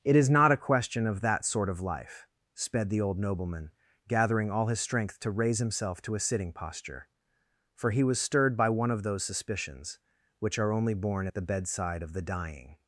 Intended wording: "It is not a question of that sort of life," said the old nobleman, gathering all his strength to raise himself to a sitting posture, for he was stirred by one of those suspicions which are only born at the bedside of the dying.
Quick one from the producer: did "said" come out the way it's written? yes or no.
no